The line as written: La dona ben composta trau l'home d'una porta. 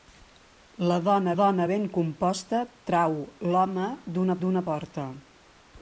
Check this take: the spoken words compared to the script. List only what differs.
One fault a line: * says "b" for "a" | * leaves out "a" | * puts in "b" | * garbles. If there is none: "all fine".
* puts in "dona"
* puts in "d'una"